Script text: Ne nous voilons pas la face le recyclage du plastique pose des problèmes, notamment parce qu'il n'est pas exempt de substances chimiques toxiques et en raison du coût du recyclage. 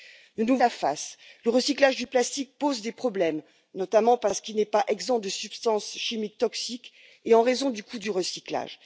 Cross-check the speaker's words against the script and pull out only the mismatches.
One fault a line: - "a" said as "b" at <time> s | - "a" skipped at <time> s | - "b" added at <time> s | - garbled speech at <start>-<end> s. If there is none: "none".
- "voilons pas" skipped at 0.6 s